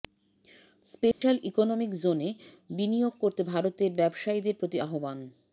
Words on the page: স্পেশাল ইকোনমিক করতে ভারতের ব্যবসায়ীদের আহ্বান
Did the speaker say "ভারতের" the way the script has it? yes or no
yes